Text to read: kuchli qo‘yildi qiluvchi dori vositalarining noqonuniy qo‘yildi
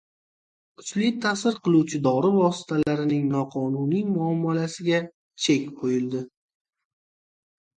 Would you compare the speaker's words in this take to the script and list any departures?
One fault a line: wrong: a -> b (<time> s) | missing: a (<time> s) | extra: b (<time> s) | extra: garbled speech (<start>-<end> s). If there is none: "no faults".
wrong: qo‘yildi -> ta'sir (1.2 s)
extra: muomalasiga chek (4.1 s)